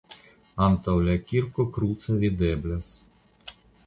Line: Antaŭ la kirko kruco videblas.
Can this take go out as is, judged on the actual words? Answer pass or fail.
pass